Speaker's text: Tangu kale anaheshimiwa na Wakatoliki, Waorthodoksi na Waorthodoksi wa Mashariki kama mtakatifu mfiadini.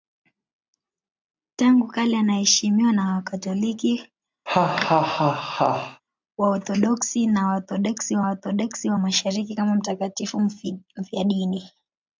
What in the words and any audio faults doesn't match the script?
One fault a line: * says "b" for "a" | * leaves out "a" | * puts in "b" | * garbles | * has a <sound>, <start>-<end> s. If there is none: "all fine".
* has a laugh, 4.5-6.0 s
* puts in "Waorthodoksi wa"